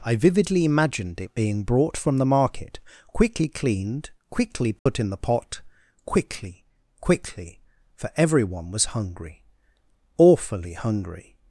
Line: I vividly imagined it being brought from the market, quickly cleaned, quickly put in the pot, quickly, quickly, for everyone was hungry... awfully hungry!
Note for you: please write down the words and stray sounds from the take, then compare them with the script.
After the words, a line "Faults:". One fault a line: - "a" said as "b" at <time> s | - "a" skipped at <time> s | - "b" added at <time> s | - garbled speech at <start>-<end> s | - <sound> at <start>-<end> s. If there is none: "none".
I vividly imagined it being brought from the market, quickly cleaned, quickly put in the pot, quickly, quickly, for everyone was hungry... awfully hungry!
Faults:
- dropout at 4.8-4.9 s